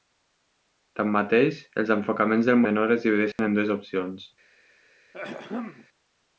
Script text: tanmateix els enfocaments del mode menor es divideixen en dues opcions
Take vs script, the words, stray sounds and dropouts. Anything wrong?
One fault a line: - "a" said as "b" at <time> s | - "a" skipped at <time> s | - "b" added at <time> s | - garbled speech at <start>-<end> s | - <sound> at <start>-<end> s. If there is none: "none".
- "mode" skipped at 2.6 s
- dropout at 3.3-3.4 s
- throat clearing at 5.1-5.9 s